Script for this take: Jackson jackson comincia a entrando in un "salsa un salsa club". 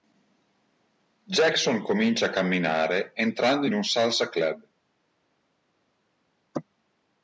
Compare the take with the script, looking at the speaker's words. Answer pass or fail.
fail